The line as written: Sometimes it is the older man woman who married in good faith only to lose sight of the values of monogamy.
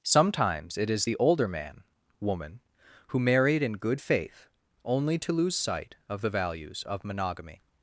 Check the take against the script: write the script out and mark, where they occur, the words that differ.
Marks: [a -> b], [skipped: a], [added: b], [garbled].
Sometimes it is the older man woman who married in good faith only to lose sight of the values of monogamy.